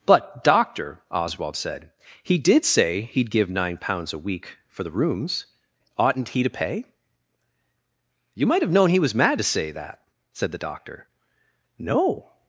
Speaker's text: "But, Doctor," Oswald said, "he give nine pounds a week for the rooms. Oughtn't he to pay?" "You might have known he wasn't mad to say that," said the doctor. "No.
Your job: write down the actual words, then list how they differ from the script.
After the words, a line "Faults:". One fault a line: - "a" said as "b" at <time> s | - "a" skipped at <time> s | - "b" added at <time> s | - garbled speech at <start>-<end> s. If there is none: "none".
"But, Doctor," Oswald said, "he did say he'd give nine pounds a week for the rooms. Oughtn't he to pay?" "You might have known he was mad to say that," said the doctor. "No.
Faults:
- "did say he'd" added at 2.4 s
- "wasn't" said as "was" at 9.0 s